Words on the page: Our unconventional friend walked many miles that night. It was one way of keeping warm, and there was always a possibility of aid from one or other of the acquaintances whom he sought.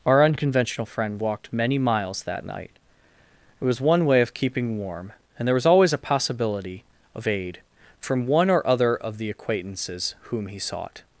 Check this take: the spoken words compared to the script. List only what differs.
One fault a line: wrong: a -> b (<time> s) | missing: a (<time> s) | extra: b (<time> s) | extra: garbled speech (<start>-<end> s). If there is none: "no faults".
no faults